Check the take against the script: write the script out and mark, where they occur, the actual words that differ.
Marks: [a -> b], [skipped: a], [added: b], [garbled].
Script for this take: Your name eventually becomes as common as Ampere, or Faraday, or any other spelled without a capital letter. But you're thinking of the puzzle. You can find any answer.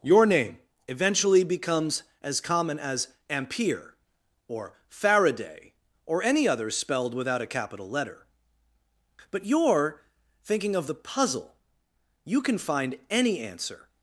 Your name eventually becomes as common as Ampere, or Faraday, or any other spelled without a capital letter. But you're thinking of the puzzle. You can find any answer.